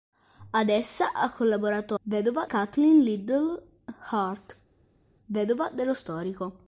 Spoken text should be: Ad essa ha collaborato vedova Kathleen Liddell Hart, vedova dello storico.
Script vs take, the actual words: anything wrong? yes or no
no